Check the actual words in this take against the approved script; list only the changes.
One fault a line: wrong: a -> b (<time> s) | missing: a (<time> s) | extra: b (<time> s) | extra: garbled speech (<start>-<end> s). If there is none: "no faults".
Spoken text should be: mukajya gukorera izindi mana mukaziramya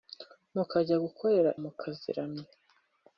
missing: izindi mana (1.5 s)